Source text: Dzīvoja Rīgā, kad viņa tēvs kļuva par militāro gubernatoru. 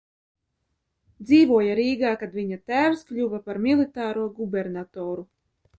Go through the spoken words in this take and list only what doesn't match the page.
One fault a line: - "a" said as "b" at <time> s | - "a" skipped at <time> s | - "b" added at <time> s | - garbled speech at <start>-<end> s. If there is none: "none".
none